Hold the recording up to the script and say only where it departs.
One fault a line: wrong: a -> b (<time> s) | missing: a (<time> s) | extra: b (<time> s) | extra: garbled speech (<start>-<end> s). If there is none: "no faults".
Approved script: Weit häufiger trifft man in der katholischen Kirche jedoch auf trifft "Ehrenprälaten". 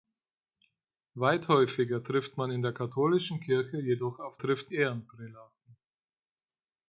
no faults